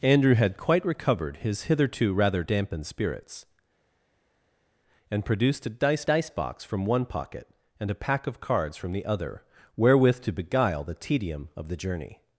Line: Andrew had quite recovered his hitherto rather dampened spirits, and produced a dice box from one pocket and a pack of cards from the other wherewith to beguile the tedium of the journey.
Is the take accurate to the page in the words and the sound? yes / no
no